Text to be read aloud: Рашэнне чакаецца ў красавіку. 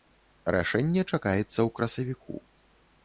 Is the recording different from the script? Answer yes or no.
no